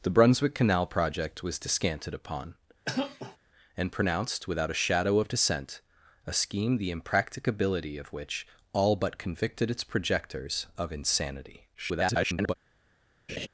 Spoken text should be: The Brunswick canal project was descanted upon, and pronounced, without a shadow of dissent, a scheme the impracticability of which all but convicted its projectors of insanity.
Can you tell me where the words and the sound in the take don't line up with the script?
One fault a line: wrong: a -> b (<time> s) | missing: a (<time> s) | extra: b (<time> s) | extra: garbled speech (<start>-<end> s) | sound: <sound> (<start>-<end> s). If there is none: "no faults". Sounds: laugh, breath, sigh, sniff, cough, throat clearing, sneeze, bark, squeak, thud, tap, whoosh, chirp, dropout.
sound: cough (2.9-3.4 s)
extra: garbled speech (11.7-12.5 s)
sound: laugh (13.3-13.5 s)